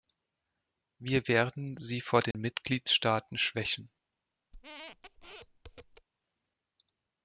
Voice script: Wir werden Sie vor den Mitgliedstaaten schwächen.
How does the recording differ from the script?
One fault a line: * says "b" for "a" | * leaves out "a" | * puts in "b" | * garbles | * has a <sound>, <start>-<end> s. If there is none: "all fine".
* has a dropout, 2.3-2.3 s
* has a squeak, 4.5-6.1 s